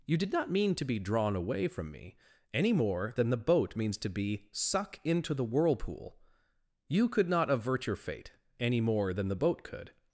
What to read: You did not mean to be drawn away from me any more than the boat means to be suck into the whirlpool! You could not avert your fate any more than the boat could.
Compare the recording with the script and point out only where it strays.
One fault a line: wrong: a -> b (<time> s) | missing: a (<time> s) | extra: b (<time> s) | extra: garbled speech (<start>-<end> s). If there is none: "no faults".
no faults